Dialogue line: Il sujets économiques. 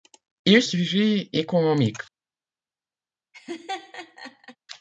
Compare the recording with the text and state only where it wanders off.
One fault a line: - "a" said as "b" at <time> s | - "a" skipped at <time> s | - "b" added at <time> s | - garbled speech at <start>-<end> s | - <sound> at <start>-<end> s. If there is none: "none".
- laugh at 3.3-4.6 s